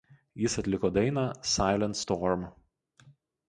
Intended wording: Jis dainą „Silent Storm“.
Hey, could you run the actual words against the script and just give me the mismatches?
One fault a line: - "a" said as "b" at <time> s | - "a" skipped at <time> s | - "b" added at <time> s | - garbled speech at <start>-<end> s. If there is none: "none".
- "atliko" added at 0.6 s